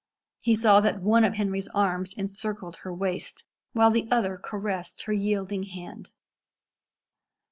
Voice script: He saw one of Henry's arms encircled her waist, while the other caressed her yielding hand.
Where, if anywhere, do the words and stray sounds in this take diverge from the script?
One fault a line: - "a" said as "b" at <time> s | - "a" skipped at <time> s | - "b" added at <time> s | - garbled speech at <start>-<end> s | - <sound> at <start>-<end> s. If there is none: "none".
- "that" added at 0.8 s